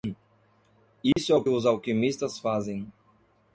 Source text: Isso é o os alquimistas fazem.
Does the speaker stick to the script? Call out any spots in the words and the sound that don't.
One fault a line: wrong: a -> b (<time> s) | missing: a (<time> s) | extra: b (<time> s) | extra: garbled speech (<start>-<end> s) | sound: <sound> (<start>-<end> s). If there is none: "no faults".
sound: dropout (1.1-1.2 s)